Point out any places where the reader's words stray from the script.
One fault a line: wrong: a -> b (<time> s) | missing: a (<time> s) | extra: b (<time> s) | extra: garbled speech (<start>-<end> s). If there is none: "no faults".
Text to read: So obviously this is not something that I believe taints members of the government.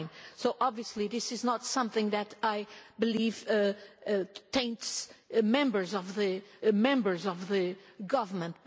extra: members of the (6.7 s)